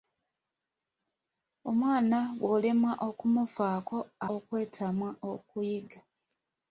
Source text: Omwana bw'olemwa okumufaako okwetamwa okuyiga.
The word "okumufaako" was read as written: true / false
true